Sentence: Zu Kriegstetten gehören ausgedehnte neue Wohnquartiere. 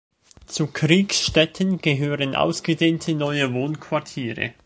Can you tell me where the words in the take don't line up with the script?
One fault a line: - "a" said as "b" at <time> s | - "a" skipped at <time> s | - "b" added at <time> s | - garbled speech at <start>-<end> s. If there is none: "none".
none